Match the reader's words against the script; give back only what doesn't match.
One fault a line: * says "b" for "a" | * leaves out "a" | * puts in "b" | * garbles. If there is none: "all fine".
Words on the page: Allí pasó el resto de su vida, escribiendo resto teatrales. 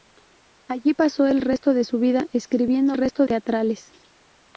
all fine